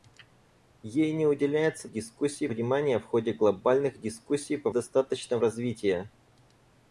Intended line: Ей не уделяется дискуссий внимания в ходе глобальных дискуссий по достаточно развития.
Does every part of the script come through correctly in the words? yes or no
yes